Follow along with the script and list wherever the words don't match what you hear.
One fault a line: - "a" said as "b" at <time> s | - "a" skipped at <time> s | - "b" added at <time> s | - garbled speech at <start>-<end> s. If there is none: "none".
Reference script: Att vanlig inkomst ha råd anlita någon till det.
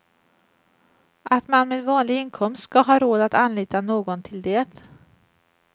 - "man med" added at 1.5 s
- "ska" added at 2.6 s
- "att" added at 3.2 s